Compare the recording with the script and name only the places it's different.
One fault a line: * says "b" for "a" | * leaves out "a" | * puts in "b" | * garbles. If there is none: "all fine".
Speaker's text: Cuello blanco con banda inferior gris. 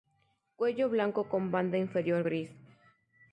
all fine